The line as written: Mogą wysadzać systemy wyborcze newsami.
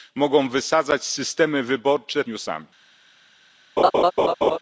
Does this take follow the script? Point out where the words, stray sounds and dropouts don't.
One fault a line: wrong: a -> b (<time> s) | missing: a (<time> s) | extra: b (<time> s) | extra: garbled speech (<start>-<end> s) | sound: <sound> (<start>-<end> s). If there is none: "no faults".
sound: laugh (3.8-4.6 s)